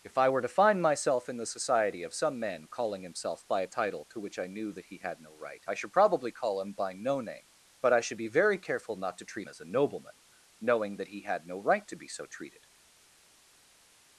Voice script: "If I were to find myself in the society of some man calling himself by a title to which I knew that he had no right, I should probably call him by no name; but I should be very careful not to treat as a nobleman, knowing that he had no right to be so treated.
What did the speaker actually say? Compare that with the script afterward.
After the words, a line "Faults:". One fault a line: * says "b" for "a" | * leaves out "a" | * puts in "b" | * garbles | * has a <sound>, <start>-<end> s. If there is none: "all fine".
"If I were to find myself in the society of some man calling himself by a title to which I knew that he had no right, I should probably call him by no name; but I should be very careful not to treat as a nobleman, knowing that he had no right to be so treated.
Faults:
all fine